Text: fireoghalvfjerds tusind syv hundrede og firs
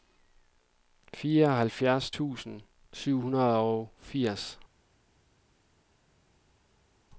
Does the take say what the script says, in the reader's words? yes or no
yes